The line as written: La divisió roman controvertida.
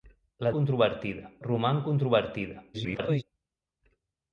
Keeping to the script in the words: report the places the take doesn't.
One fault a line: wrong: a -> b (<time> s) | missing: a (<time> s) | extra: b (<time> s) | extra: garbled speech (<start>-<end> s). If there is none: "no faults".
wrong: divisió -> controvertida (0.6 s)
extra: garbled speech (2.7-3.2 s)